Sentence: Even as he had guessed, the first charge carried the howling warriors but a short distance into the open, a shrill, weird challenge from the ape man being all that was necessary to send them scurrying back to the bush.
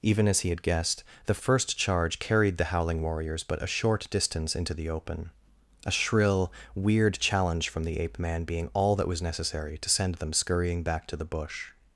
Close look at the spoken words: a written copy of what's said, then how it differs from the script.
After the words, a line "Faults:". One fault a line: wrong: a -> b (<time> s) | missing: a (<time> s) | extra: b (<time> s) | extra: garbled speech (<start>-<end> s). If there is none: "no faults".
Even as he had guessed, the first charge carried the howling warriors but a short distance into the open, a shrill, weird challenge from the ape man being all that was necessary to send them scurrying back to the bush.
Faults:
no faults